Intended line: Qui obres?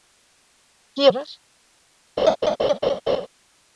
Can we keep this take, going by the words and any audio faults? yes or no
no